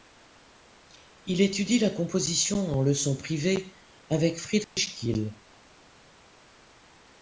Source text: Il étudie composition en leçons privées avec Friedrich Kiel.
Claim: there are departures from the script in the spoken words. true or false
true